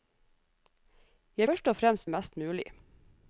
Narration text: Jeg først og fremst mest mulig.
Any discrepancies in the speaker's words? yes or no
no